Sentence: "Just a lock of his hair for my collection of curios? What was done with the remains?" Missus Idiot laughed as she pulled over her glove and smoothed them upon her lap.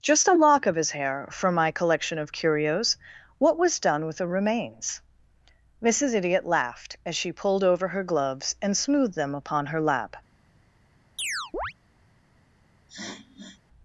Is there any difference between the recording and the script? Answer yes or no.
yes